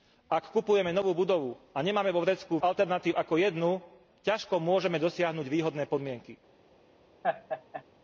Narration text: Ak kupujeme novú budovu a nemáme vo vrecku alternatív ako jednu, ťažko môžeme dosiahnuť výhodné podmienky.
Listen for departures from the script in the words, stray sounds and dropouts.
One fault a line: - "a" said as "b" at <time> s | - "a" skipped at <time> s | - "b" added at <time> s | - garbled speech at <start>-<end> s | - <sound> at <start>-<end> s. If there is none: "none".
- laugh at 7.2-7.8 s